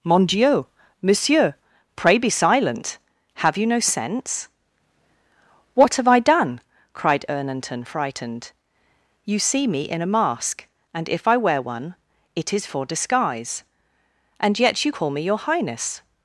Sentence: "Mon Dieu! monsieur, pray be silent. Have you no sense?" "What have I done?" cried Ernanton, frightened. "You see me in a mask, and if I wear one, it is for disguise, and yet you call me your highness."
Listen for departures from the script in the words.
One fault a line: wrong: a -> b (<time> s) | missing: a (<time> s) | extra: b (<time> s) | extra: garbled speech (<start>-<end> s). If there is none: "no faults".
no faults